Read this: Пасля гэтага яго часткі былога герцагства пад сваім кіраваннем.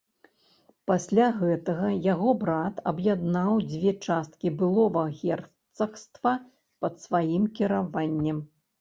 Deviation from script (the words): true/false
true